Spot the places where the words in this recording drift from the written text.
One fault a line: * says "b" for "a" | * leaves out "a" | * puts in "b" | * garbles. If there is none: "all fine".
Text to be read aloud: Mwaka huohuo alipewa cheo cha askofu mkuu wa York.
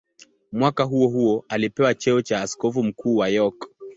all fine